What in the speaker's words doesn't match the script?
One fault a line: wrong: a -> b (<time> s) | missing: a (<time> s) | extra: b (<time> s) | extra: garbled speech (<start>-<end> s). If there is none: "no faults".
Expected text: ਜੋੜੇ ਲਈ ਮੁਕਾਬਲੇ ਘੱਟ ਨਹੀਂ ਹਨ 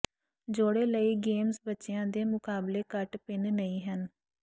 extra: ਗੇਮਜ਼ ਬੱਚਿਆਂ ਦੇ (1.2 s)
extra: ਭਿੰਨ (3.2 s)